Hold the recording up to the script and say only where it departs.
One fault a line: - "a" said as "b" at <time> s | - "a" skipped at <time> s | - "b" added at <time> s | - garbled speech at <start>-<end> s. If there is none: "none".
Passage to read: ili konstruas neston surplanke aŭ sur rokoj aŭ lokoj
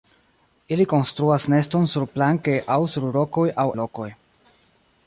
none